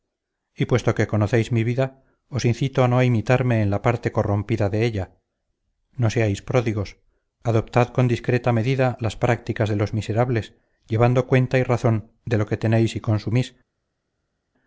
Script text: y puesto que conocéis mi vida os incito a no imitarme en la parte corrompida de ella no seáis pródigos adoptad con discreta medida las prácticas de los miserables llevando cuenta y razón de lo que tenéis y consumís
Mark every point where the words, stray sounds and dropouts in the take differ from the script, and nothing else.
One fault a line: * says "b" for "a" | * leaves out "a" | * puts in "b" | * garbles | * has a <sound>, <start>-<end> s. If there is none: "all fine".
all fine